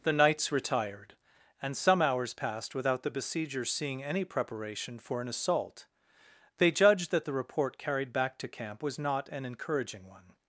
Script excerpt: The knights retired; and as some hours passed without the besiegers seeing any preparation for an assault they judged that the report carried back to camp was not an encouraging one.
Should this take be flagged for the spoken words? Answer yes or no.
yes